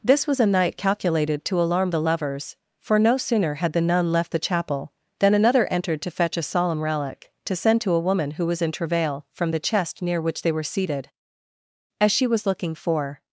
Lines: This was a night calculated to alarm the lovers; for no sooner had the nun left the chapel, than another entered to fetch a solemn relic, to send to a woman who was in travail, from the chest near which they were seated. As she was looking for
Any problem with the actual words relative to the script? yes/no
no